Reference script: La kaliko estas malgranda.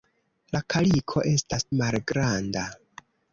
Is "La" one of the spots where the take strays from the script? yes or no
no